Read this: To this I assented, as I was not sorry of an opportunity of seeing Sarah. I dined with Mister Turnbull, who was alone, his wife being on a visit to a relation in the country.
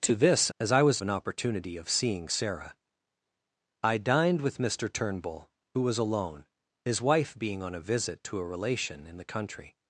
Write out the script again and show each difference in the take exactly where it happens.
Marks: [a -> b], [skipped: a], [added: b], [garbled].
To this [skipped: I assented,] as I was [skipped: not sorry of] an opportunity of seeing Sarah. I dined with Mister Turnbull, who was alone, his wife being on a visit to a relation in the country.